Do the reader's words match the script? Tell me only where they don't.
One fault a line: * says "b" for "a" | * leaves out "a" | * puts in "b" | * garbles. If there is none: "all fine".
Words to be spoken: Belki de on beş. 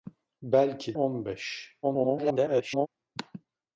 * leaves out "de"
* garbles